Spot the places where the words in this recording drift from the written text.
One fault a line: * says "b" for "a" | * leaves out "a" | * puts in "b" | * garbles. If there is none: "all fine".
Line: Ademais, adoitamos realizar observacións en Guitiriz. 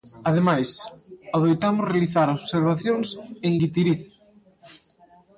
all fine